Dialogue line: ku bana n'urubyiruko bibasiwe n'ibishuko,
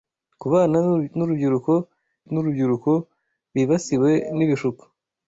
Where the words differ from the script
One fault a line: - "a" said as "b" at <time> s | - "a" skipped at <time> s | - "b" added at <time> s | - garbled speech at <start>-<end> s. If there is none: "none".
- "n'urubyiruko" added at 2.3 s